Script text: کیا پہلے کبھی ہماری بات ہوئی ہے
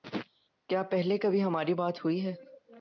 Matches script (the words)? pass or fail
pass